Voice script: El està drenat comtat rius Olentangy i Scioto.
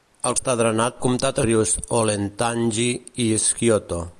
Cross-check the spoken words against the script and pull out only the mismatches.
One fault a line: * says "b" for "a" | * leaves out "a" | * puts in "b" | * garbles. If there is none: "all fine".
all fine